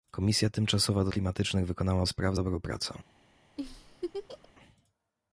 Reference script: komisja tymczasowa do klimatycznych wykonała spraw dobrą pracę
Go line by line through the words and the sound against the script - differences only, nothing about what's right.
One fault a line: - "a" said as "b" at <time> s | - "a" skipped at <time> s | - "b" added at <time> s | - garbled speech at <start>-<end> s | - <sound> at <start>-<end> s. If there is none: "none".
- laugh at 3.6-4.5 s